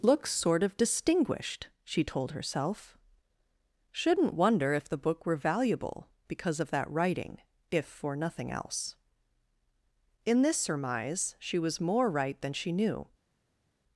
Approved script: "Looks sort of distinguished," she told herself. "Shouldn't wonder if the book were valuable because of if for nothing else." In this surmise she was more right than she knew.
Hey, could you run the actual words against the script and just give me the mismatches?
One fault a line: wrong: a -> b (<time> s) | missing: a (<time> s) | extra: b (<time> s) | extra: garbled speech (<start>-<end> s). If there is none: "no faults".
extra: that writing (6.7 s)